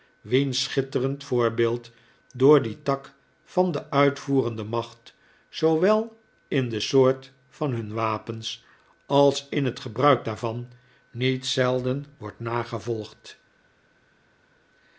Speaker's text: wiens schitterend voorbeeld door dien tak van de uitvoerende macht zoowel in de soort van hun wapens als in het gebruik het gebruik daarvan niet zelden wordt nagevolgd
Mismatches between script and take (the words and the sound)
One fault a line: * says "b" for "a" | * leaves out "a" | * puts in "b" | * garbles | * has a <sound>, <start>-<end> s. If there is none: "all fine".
* leaves out "het gebruik"